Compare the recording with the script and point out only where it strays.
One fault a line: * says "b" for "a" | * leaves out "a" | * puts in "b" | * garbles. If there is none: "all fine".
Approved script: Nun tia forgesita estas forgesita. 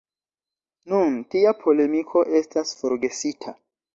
* says "polemiko" for "forgesita"